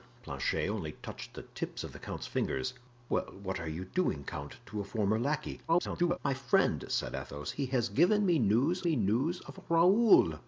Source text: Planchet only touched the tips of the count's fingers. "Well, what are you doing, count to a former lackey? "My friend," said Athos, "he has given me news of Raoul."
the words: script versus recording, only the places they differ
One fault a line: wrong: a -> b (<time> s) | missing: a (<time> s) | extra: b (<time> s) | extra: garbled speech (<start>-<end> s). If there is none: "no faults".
extra: garbled speech (5.7-6.2 s)
extra: me news (8.8 s)